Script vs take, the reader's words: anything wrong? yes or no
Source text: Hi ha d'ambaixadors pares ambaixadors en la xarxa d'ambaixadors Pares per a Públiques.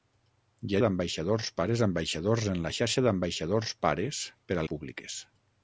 no